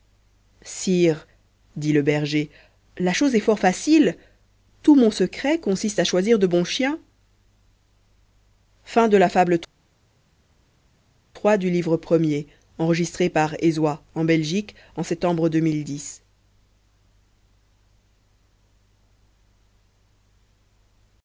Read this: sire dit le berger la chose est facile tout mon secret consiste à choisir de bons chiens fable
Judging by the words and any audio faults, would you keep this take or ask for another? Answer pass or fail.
fail